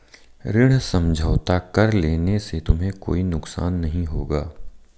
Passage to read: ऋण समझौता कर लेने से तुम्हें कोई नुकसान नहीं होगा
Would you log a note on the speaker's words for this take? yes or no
no